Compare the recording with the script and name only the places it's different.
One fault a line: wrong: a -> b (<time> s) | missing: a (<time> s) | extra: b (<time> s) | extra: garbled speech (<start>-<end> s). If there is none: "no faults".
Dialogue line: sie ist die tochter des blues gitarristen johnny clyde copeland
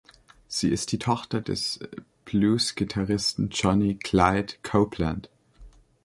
no faults